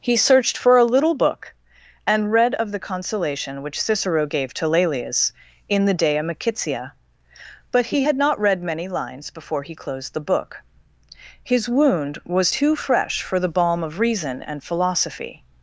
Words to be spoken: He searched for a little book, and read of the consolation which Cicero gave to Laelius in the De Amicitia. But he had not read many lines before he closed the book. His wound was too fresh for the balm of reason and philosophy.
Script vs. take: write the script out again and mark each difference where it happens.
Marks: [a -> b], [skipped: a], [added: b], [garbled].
He searched for a little book, and read of the consolation which Cicero gave to Laelius in the De Amicitia. But he had not read many lines before he closed the book. His wound was too fresh for the balm of reason and philosophy.